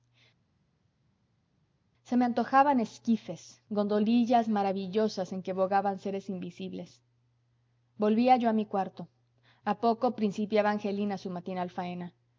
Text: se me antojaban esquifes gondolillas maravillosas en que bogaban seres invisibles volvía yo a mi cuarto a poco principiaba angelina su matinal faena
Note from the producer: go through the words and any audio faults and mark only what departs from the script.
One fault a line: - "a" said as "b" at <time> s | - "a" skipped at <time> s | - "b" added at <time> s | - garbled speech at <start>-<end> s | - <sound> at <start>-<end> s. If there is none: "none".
none